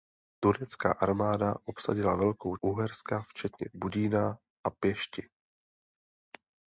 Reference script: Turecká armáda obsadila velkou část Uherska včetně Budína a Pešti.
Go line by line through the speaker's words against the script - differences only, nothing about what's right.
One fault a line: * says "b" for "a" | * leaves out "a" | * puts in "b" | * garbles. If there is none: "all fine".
* leaves out "část"